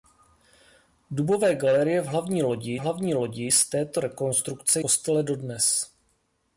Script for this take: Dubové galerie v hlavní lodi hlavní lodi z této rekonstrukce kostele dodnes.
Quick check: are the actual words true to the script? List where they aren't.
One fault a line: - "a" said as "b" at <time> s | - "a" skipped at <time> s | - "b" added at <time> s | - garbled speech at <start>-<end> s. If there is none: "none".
none